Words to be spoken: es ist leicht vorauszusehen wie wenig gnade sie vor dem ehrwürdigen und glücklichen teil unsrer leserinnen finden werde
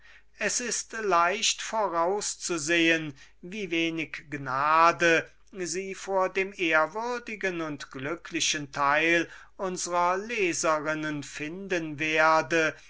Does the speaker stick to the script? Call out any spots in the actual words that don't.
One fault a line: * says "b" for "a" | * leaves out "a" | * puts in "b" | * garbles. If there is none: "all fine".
all fine